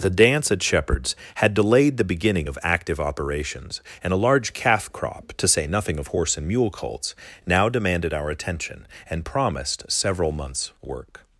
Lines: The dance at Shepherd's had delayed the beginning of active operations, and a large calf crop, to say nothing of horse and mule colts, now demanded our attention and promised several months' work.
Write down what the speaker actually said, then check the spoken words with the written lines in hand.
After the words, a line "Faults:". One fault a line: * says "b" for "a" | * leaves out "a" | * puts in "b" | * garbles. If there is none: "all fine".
The dance at Shepherd's had delayed the beginning of active operations, and a large calf crop, to say nothing of horse and mule colts, now demanded our attention and promised several months' work.
Faults:
all fine